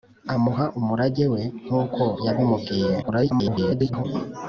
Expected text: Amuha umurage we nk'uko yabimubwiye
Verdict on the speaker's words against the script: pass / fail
fail